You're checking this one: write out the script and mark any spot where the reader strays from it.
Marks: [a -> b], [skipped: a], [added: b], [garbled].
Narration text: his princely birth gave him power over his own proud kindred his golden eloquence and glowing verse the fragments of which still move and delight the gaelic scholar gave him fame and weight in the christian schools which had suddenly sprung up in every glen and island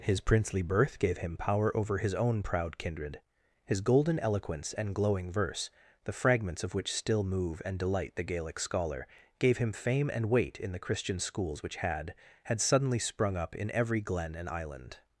his princely birth gave him power over his own proud kindred his golden eloquence and glowing verse the fragments of which still move and delight the gaelic scholar gave him fame and weight in the christian schools which had [added: had] suddenly sprung up in every glen and island